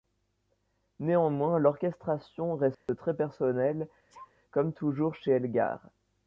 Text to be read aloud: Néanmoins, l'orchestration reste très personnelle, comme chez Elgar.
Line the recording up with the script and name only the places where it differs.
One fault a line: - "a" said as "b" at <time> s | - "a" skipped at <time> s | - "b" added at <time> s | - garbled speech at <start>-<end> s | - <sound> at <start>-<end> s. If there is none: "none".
- dropout at 2.7-2.9 s
- sneeze at 4.1-4.3 s
- "toujours" added at 4.7 s